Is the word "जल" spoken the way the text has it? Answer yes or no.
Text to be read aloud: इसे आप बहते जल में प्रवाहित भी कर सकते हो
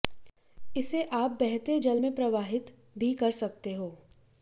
yes